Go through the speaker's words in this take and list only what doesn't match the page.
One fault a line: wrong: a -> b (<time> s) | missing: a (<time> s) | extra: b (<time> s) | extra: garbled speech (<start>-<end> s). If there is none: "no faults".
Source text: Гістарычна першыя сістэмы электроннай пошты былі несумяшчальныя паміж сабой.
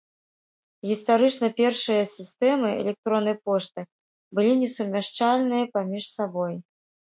no faults